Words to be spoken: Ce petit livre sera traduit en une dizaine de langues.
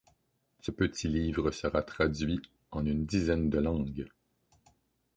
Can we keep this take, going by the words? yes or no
yes